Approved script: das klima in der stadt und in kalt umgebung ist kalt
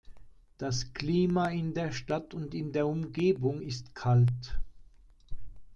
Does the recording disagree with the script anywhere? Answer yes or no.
yes